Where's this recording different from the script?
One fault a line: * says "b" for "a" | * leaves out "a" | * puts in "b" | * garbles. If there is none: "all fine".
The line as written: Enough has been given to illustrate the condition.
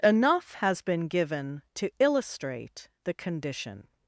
all fine